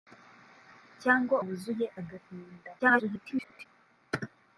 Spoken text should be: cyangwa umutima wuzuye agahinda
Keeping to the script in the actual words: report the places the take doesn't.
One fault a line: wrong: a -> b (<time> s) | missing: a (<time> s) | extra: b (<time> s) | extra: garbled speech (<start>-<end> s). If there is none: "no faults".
missing: umutima (1.4 s)
extra: garbled speech (2.8-3.7 s)